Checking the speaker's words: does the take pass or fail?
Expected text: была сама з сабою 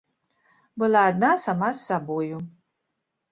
fail